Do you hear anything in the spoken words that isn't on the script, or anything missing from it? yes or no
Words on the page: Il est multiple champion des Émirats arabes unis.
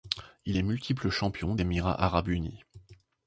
yes